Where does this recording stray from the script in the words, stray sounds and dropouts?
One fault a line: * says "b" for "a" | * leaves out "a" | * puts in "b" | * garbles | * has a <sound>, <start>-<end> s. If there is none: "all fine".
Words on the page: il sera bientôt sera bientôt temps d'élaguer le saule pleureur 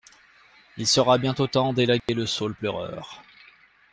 * leaves out "sera bientôt"
* has a dropout, 2.0-2.1 s